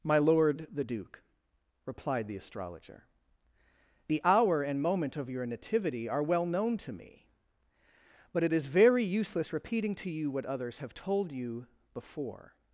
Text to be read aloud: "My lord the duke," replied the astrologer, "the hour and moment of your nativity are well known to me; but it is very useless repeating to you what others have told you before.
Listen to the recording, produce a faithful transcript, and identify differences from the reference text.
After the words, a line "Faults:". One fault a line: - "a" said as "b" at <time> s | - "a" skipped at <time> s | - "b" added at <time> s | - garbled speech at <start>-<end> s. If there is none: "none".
"My lord the duke," replied the astrologer, "the hour and moment of your nativity are well known to me; but it is very useless repeating to you what others have told you before.
Faults:
none